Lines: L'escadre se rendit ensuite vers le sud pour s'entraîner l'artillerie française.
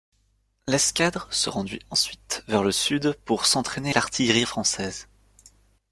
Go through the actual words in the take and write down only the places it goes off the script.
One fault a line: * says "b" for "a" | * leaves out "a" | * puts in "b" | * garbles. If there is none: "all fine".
all fine